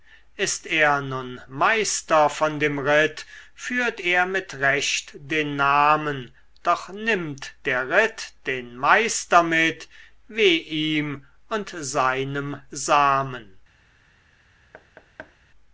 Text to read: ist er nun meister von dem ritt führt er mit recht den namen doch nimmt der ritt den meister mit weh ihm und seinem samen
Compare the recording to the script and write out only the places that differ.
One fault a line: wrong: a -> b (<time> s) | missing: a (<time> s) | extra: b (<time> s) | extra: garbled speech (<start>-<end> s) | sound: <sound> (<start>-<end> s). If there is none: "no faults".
sound: thud (14.7-15.4 s)